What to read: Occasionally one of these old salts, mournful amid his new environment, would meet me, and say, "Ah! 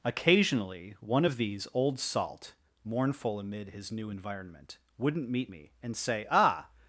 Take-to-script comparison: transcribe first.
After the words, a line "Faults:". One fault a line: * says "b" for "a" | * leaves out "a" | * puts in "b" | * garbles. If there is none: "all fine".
Occasionally one of these old salt, mournful amid his new environment, wouldn't meet me, and say, "Ah!
Faults:
* says "salt" for "salts"
* says "wouldn't" for "would"